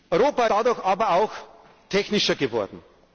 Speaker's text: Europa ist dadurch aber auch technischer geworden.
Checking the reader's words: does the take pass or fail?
fail